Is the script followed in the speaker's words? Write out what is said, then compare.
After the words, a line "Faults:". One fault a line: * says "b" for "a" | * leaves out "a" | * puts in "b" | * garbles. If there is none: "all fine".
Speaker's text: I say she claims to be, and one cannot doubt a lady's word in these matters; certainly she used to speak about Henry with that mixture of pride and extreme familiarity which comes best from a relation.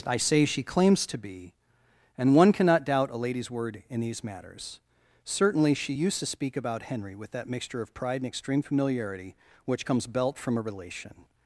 I say she claims to be, and one cannot doubt a lady's word in these matters; certainly she used to speak about Henry with that mixture of pride and extreme familiarity which comes belt from a relation.
Faults:
* says "belt" for "best"